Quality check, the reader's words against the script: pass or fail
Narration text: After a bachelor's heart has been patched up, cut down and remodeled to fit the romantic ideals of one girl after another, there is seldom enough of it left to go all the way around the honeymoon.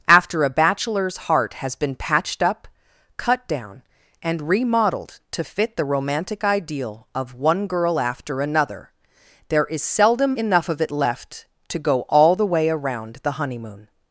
fail